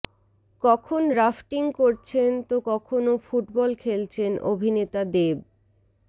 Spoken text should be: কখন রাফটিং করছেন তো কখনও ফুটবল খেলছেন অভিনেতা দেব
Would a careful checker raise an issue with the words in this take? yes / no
no